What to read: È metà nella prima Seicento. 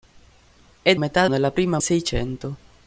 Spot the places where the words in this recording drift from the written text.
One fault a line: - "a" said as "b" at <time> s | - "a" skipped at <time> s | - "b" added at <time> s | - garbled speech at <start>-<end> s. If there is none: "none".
none